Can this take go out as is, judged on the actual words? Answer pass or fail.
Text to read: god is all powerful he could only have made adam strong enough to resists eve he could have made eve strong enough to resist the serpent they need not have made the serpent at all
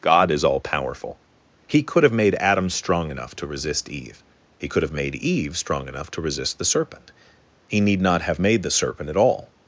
fail